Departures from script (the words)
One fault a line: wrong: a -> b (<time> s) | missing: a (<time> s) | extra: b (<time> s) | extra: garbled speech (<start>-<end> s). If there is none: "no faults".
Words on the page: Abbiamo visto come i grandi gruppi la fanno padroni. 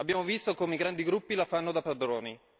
extra: da (1.7 s)